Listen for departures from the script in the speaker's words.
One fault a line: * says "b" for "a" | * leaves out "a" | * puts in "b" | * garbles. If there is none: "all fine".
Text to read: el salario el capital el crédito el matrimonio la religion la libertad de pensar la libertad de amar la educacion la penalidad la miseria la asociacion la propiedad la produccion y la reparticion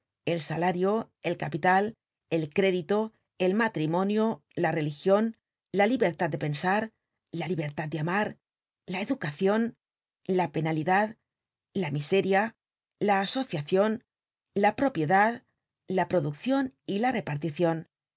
all fine